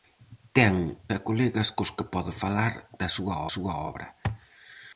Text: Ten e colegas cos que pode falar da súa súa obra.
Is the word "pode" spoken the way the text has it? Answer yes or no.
yes